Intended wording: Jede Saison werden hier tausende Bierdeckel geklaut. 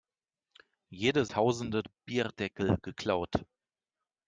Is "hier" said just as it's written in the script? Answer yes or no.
no